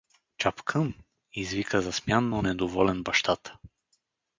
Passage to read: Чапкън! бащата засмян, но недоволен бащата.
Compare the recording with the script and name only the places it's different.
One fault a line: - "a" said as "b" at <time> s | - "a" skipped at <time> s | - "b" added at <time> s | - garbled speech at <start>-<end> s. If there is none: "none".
- "бащата" said as "извика" at 1.3 s